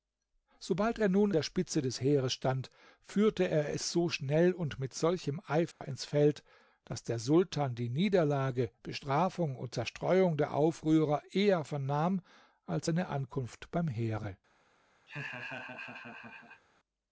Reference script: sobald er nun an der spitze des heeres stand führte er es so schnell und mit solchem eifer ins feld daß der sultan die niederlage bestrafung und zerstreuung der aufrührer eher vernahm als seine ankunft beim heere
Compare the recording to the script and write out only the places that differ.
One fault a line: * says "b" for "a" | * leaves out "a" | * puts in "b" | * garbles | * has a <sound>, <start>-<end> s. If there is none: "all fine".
* leaves out "an"
* has a dropout, 5.7-5.8 s
* has a laugh, 15.1-16.6 s